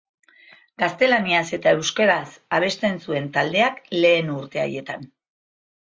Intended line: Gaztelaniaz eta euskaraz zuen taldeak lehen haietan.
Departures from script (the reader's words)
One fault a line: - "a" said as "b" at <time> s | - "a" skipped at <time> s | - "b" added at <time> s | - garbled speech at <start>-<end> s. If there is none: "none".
- "abesten" added at 2.6 s
- "urte" added at 4.4 s